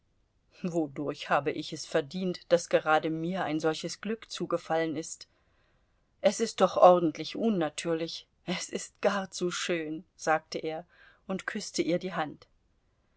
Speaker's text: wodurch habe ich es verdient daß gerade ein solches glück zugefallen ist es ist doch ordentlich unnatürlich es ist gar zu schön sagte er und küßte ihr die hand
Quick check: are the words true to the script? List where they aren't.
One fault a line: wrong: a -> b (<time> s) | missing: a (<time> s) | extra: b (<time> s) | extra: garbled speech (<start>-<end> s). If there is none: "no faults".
extra: mir (3.1 s)